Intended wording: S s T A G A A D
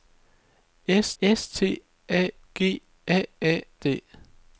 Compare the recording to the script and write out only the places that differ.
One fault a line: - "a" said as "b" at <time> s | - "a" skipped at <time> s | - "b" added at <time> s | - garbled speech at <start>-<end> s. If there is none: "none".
none